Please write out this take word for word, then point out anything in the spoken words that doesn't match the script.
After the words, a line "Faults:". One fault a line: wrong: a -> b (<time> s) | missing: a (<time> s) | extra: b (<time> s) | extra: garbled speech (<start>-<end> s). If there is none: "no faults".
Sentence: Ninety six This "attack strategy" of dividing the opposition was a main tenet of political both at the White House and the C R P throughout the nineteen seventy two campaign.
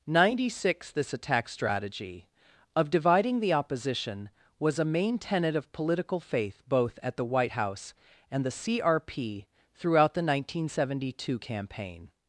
Ninety six This "attack strategy" of dividing the opposition was a main tenet of political faith both at the White House and the C R P throughout the nineteen seventy two campaign.
Faults:
extra: faith (6.2 s)